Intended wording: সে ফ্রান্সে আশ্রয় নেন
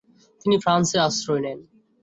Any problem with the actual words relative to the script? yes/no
yes